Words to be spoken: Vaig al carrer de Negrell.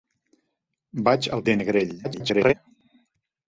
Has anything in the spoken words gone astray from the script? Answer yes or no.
yes